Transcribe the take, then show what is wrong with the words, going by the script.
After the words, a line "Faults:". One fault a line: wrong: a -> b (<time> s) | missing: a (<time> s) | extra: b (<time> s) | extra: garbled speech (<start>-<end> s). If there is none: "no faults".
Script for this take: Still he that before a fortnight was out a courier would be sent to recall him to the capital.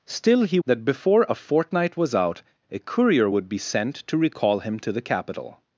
Still he that before a fortnight was out a courier would be sent to recall him to the capital.
Faults:
no faults